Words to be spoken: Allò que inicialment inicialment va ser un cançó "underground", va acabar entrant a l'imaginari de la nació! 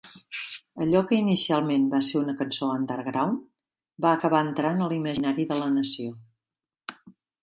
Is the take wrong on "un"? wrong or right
wrong